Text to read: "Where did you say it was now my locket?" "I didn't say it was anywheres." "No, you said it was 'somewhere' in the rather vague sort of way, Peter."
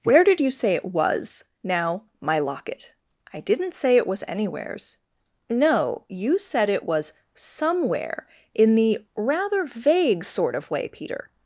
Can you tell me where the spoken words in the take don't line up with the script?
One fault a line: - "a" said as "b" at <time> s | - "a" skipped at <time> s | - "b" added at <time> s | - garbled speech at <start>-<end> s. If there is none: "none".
none